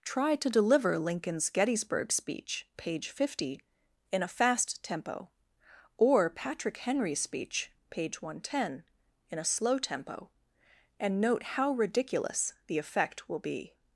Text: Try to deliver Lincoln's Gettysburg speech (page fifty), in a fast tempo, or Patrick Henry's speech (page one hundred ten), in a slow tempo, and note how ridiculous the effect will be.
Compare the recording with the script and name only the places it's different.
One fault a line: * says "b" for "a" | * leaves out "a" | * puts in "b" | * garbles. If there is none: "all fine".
all fine